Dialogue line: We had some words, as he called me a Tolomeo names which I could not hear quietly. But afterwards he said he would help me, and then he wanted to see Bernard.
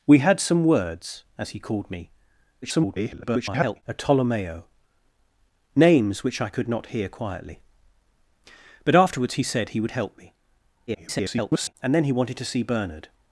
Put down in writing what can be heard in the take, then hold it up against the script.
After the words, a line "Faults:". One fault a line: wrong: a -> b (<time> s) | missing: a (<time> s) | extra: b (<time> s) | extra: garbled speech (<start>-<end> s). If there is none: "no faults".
We had some words, as he called me [garbled] a Tolomeo names which I could not hear quietly. But afterwards he said he would help me, [garbled] and then he wanted to see Bernard.
Faults:
extra: garbled speech (2.6-3.8 s)
extra: garbled speech (10.9-11.7 s)